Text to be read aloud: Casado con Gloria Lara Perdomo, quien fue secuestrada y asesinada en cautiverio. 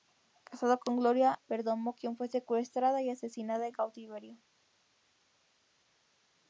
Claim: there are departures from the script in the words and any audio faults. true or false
true